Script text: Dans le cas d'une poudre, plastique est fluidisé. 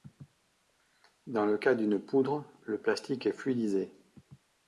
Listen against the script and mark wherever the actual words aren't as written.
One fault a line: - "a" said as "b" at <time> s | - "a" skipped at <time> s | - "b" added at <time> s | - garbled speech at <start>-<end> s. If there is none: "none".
- "le" added at 2.6 s